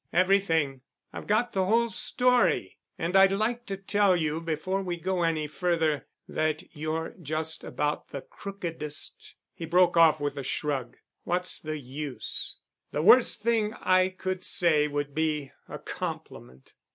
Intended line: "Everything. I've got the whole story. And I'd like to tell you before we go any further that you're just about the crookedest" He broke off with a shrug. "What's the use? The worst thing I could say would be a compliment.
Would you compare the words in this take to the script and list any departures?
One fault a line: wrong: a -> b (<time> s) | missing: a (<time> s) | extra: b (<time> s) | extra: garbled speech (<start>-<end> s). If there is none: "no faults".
no faults